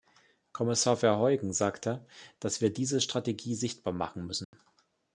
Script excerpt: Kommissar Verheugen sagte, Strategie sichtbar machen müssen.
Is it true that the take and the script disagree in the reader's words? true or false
true